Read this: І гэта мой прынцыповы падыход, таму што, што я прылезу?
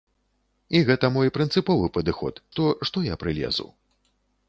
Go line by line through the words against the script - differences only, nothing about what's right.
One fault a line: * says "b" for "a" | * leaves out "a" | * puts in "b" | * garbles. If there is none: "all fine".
* leaves out "таму"